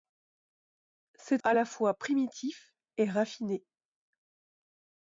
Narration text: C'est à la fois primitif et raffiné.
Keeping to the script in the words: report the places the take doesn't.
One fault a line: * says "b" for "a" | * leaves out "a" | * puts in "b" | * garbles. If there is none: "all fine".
all fine